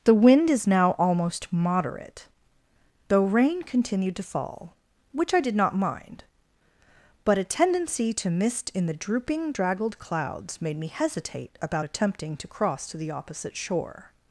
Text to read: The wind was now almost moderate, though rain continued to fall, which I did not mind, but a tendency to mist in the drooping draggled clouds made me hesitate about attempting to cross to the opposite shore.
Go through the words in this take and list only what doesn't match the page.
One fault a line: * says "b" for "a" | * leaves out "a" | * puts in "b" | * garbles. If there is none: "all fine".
* says "is" for "was"